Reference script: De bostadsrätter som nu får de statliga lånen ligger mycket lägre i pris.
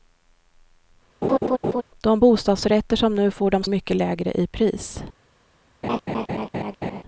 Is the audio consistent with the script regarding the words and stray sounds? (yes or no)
no